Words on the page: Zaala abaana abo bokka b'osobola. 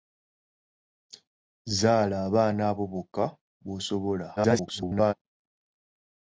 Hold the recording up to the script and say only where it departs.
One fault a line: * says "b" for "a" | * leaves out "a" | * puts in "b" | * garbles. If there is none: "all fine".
* garbles